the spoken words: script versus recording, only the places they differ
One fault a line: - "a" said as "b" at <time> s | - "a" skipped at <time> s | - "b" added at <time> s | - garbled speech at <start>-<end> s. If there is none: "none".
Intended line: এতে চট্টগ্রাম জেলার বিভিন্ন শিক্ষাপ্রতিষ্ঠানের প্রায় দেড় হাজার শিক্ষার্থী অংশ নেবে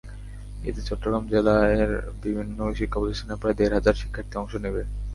none